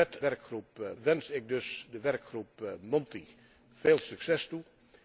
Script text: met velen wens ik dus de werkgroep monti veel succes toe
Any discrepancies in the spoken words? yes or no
yes